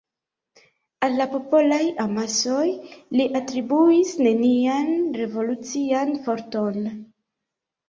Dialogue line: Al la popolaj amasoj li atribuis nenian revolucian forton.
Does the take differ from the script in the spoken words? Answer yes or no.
no